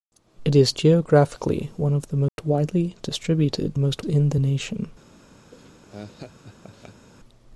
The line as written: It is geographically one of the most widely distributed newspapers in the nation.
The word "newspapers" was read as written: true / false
false